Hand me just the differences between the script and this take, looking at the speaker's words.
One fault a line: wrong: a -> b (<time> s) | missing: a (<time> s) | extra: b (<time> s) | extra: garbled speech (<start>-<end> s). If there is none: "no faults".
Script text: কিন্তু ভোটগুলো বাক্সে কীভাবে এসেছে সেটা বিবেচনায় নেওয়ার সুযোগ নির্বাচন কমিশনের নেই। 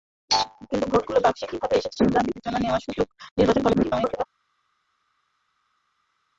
extra: garbled speech (3.7-4.3 s)